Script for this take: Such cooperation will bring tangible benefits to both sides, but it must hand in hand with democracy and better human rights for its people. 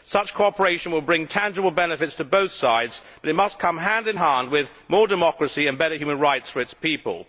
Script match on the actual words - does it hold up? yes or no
no